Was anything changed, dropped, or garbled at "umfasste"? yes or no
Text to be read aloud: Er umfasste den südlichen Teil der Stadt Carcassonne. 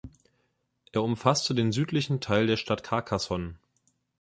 no